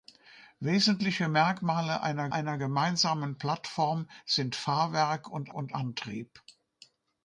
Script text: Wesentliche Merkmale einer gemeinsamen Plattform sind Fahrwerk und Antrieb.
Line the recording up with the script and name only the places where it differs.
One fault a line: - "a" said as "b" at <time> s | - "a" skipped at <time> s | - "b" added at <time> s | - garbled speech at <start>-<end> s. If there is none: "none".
- "einer" added at 2.3 s
- "und" added at 5.5 s